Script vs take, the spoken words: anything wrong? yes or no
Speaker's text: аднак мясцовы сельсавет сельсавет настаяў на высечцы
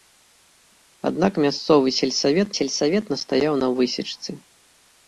no